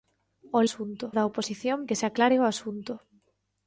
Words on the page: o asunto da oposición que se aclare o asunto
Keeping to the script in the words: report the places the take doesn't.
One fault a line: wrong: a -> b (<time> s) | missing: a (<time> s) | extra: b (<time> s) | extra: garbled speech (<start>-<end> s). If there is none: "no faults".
no faults